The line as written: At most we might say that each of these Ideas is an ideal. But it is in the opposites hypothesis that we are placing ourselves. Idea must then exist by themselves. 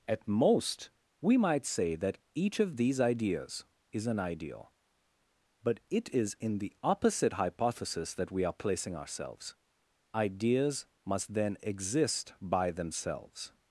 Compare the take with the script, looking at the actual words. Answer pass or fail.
fail